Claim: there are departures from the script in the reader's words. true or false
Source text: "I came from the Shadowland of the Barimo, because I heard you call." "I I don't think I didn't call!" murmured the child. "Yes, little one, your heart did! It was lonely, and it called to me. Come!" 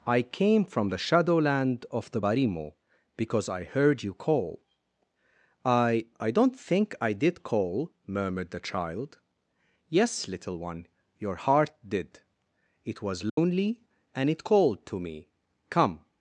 true